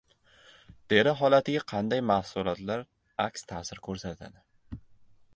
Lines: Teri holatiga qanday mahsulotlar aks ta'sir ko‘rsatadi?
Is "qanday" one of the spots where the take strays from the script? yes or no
no